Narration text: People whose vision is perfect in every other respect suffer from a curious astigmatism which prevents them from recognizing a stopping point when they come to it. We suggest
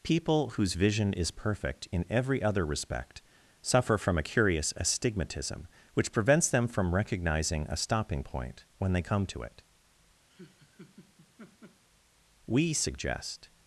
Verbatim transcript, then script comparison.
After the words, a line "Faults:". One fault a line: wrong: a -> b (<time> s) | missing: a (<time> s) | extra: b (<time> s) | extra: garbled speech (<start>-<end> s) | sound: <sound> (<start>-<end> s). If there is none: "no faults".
People whose vision is perfect in every other respect suffer from a curious astigmatism which prevents them from recognizing a stopping point when they come to it. We suggest
Faults:
sound: laugh (10.3-11.8 s)